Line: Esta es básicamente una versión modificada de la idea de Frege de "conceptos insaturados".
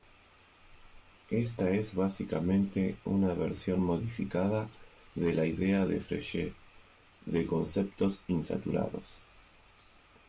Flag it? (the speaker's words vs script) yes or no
no